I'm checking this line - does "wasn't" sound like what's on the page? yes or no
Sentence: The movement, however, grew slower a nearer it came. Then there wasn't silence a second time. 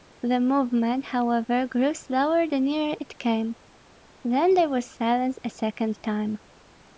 no